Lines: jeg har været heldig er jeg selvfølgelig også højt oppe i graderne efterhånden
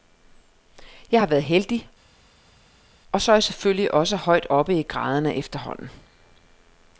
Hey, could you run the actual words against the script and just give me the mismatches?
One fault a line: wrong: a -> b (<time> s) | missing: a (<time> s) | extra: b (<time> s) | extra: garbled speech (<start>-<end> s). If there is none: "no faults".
extra: og så (3.1 s)